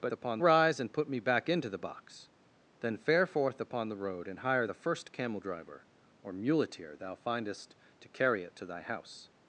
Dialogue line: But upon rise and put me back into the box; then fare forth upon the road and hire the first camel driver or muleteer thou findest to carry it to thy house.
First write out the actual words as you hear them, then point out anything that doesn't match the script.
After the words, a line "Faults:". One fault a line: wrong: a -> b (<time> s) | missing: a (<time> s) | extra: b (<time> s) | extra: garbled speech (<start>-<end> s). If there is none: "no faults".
But upon rise and put me back into the box; then fare forth upon the road and hire the first camel driver or muleteer thou findest to carry it to thy house.
Faults:
no faults